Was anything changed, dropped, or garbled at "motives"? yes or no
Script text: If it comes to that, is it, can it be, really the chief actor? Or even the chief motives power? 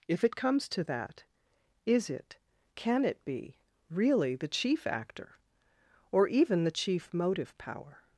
yes